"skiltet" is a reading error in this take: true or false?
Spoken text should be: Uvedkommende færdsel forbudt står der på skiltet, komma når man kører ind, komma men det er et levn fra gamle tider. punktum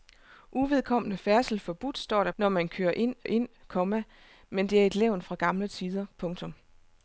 true